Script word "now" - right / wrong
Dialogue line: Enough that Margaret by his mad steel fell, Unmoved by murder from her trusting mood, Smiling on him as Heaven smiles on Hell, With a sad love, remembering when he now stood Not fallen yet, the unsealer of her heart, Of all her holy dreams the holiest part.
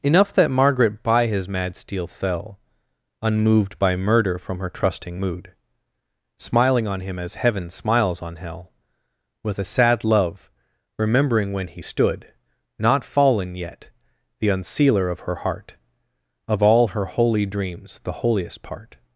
wrong